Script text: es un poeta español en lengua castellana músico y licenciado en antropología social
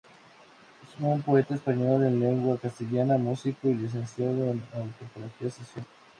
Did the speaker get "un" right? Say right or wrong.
right